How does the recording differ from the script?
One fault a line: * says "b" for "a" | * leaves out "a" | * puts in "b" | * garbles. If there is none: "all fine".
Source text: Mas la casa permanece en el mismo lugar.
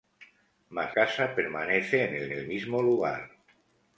* leaves out "la"
* puts in "el"